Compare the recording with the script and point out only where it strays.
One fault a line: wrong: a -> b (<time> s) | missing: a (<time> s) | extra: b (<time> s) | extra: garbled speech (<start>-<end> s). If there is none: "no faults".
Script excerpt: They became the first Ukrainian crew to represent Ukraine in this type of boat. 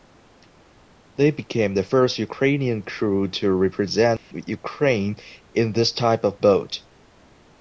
no faults